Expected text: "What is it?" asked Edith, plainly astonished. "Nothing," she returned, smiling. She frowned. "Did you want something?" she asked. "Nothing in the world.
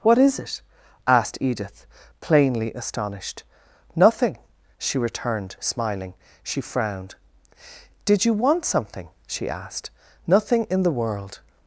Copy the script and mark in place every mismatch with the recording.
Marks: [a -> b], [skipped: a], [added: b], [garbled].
"What is it?" asked Edith, plainly astonished. "Nothing," she returned, smiling. She frowned. "Did you want something?" she asked. "Nothing in the world.